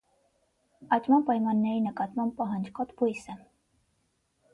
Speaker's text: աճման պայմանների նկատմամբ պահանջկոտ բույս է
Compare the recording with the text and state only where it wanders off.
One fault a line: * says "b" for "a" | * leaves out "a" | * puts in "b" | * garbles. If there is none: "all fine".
all fine